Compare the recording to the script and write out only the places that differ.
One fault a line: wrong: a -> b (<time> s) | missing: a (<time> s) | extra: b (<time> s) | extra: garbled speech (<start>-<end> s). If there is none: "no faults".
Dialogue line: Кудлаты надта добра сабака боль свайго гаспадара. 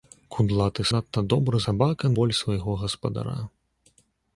no faults